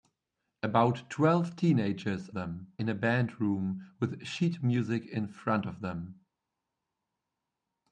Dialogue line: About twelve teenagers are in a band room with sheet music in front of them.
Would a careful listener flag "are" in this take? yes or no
yes